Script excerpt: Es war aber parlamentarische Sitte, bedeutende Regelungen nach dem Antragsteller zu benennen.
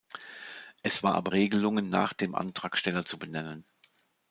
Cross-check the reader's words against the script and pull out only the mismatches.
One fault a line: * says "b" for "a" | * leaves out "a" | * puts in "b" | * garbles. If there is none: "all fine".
* leaves out "parlamentarische Sitte bedeutende"